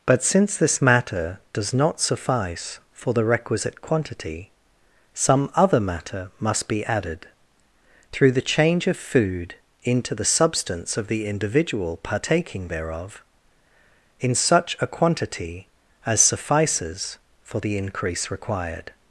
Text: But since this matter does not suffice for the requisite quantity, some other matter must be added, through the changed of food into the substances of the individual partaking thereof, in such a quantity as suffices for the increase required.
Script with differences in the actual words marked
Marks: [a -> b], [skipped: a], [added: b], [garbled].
But since this matter does not suffice for the requisite quantity, some other matter must be added, through the [changed -> change] of food into the [substances -> substance] of the individual partaking thereof, in such a quantity as suffices for the increase required.